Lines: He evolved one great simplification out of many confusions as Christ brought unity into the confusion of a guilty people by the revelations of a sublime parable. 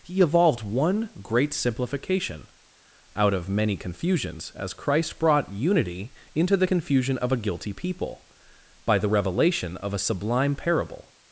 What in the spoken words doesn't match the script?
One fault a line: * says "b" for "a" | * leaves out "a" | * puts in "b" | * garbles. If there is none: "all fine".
* says "revelation" for "revelations"